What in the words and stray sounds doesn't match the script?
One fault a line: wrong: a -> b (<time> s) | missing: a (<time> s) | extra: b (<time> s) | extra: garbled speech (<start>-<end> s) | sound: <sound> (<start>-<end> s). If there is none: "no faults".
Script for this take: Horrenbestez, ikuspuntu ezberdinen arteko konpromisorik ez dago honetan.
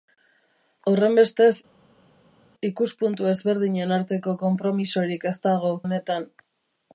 no faults